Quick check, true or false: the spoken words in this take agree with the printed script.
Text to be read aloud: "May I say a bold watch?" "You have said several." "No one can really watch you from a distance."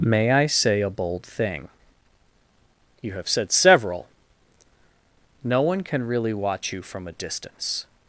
false